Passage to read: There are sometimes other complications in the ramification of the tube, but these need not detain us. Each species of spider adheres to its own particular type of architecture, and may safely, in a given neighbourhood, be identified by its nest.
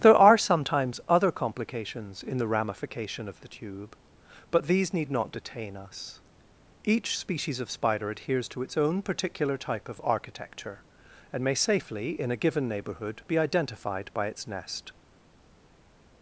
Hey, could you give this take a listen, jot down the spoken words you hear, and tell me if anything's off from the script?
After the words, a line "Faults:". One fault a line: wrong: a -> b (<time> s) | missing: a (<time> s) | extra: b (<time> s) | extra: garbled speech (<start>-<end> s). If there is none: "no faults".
There are sometimes other complications in the ramification of the tube, but these need not detain us. Each species of spider adheres to its own particular type of architecture, and may safely, in a given neighbourhood, be identified by its nest.
Faults:
no faults